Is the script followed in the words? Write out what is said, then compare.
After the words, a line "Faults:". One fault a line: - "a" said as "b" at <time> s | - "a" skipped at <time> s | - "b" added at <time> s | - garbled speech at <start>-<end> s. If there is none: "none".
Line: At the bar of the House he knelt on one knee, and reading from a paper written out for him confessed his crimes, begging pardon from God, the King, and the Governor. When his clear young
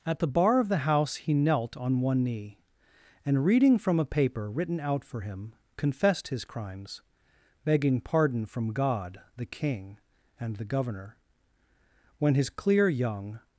At the bar of the House he knelt on one knee, and reading from a paper written out for him confessed his crimes, begging pardon from God, the King, and the Governor. When his clear young
Faults:
none